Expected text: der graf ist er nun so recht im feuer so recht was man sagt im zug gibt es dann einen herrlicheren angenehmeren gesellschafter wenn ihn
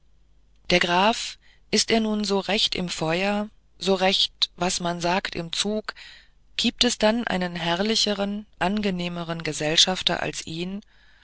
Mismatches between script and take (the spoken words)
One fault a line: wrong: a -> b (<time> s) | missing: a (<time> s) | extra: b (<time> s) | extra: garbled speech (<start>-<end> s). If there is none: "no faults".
wrong: wenn -> als (10.2 s)